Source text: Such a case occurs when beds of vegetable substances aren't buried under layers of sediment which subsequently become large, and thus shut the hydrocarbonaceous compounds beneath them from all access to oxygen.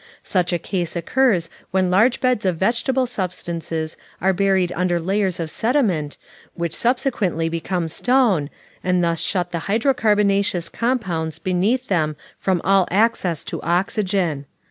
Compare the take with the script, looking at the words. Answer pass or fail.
fail